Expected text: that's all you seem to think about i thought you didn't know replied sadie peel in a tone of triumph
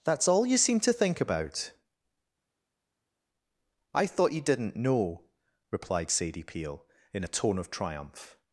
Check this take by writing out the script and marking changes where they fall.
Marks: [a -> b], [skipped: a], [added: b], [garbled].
that's all you seem to think about i thought you didn't know replied sadie peel in a tone of triumph